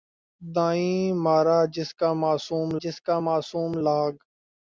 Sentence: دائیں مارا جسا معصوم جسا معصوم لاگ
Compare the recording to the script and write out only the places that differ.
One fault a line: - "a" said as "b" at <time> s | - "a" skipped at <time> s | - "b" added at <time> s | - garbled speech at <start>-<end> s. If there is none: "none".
none